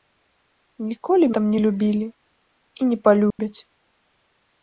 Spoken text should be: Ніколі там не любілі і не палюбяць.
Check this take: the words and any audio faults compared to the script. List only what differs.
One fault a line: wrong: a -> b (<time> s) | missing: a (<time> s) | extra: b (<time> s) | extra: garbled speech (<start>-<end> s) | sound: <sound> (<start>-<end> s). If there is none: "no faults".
sound: dropout (3.3-3.4 s)